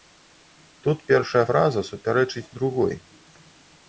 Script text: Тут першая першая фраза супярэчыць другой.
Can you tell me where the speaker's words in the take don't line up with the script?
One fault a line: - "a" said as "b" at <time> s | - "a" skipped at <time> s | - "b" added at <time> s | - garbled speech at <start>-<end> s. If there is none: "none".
- "першая" skipped at 1.4 s